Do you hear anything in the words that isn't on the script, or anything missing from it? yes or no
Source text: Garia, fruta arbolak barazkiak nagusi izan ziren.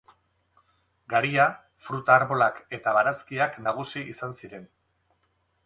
yes